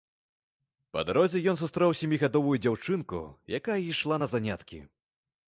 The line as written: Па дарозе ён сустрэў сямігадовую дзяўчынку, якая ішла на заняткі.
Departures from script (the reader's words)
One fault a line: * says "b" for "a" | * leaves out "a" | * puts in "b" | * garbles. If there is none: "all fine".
all fine